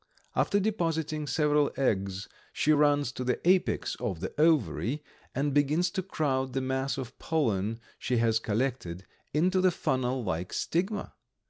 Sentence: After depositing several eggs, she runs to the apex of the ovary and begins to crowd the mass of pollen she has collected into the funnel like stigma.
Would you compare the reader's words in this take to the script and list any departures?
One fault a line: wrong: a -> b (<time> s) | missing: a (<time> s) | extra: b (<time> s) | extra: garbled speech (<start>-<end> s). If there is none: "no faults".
no faults